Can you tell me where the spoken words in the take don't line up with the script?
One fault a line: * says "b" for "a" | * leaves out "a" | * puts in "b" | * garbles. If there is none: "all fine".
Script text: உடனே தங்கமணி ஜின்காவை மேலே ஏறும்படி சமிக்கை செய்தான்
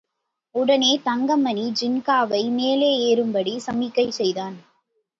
all fine